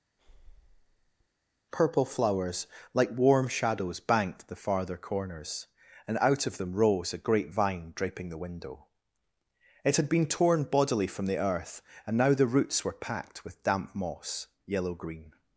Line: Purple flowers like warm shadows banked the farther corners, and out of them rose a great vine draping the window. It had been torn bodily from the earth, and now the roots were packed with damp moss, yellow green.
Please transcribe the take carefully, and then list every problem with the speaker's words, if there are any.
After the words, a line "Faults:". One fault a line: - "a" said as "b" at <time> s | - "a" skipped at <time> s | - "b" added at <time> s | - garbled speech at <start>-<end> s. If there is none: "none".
Purple flowers like warm shadows banked the farther corners, and out of them rose a great vine draping the window. It had been torn bodily from the earth, and now the roots were packed with damp moss, yellow green.
Faults:
none